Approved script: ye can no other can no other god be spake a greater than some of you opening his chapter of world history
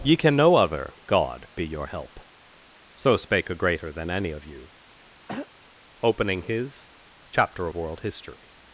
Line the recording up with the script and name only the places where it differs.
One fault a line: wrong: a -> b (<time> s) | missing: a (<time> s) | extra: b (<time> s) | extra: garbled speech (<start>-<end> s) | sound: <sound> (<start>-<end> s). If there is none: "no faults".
wrong: can no other god be -> god be your help so (1.1 s)
wrong: some -> any (4.1 s)
sound: throat clearing (5.3-5.5 s)